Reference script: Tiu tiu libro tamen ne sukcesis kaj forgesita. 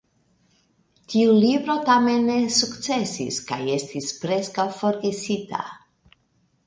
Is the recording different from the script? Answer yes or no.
yes